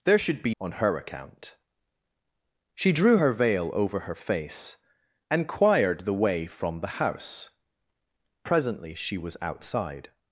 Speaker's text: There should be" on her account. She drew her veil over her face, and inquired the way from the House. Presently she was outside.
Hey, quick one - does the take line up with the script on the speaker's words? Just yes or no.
yes